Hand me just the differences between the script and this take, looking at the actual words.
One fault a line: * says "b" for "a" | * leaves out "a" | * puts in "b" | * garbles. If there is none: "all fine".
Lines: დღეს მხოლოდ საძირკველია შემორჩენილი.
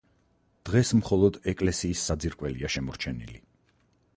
* puts in "ეკლესიის"